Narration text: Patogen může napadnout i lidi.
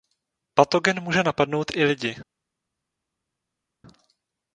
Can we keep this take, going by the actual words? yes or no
yes